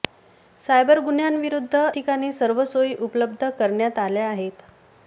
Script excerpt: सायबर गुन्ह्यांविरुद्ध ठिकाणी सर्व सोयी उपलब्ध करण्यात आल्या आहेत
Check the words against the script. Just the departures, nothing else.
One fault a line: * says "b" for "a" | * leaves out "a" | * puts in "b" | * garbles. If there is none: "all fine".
all fine